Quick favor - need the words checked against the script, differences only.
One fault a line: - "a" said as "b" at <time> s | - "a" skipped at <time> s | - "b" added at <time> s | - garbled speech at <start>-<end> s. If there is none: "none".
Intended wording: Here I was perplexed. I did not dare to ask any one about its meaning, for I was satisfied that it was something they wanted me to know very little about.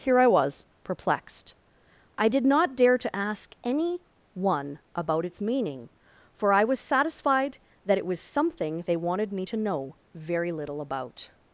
none